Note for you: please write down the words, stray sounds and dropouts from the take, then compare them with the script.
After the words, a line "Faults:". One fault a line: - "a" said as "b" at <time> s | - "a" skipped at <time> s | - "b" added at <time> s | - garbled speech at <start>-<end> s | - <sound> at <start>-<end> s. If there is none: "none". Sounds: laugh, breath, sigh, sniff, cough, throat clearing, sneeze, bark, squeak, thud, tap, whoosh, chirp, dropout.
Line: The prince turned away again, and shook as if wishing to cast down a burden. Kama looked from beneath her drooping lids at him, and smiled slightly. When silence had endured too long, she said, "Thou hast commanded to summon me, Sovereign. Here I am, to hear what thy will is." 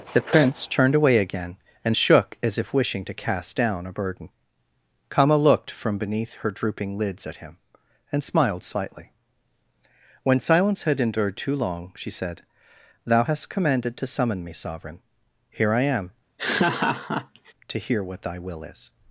The prince turned away again, and shook as if wishing to cast down a burden. Kama looked from beneath her drooping lids at him, and smiled slightly. When silence had endured too long, she said, "Thou hast commanded to summon me, Sovereign. Here I am, to hear what thy will is."
Faults:
- laugh at 16.4-17.5 s